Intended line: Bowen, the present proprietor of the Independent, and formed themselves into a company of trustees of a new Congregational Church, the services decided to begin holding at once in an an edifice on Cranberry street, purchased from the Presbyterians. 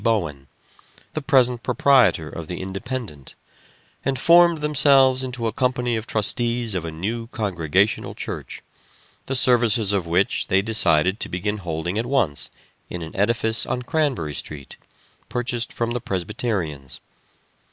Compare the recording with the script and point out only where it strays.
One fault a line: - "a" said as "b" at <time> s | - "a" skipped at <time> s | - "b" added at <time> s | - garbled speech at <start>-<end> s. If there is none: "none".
- "of which they" added at 9.9 s
- "an" skipped at 13.2 s